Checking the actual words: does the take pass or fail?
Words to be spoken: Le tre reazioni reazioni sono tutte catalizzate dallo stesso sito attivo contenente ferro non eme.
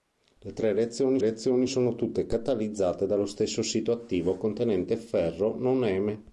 pass